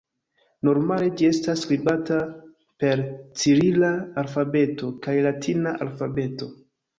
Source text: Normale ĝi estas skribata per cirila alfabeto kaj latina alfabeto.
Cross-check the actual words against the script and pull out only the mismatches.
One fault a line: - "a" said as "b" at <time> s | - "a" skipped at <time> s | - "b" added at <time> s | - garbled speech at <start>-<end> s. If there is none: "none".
none